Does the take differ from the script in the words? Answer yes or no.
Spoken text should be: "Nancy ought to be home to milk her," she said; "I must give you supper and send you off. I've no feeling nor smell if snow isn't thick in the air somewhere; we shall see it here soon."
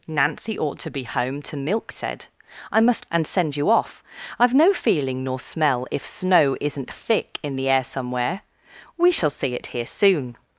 yes